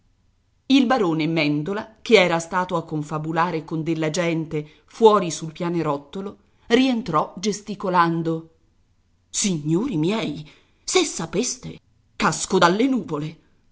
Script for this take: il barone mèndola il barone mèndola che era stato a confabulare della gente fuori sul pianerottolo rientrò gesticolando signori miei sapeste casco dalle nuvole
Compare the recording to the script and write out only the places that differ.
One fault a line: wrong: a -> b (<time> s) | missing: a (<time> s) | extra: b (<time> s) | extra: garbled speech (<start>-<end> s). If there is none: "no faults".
missing: il barone mèndola (2.0 s)
extra: con (3.6 s)
extra: se (10.8 s)